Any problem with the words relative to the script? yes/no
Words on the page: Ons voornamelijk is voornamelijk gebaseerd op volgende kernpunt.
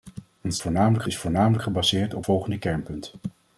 no